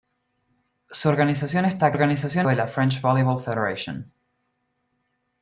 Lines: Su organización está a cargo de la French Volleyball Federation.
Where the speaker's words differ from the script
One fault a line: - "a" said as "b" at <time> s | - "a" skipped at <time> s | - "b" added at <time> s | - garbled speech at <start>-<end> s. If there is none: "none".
- "cargo" said as "organización" at 1.9 s